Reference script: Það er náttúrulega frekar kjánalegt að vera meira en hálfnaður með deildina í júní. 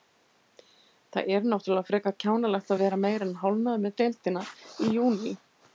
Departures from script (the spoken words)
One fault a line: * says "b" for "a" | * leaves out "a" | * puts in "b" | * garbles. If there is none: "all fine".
all fine